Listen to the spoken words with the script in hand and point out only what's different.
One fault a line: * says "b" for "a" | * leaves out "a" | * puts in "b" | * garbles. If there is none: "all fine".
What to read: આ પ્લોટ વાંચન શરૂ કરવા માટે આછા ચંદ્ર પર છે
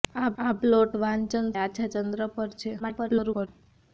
* puts in "આ"
* leaves out "શરૂ કરવા માટે"
* garbles